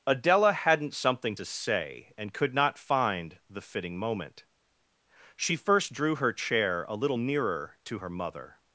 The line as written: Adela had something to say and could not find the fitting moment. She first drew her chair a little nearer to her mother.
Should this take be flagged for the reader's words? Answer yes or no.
yes